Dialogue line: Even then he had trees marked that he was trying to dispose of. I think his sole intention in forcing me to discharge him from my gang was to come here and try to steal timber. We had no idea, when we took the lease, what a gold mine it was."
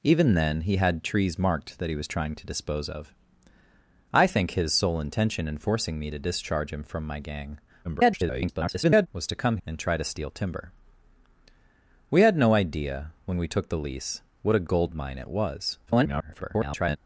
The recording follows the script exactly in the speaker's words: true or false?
false